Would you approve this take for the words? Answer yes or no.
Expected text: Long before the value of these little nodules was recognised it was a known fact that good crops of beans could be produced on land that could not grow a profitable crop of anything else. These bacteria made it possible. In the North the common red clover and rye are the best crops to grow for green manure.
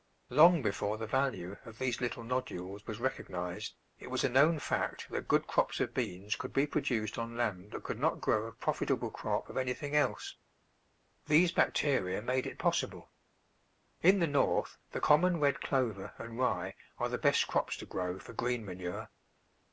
yes